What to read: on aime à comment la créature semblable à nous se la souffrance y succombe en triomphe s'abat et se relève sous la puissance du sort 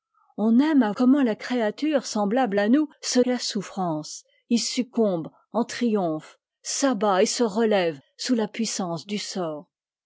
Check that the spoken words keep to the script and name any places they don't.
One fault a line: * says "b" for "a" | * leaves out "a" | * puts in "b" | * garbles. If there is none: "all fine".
all fine